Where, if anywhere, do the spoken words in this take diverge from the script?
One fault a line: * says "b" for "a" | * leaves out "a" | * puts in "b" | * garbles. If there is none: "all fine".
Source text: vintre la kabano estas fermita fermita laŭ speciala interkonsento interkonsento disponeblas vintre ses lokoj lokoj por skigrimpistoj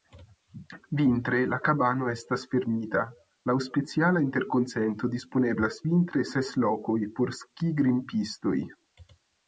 * leaves out "fermita"
* leaves out "interkonsento"
* leaves out "lokoj"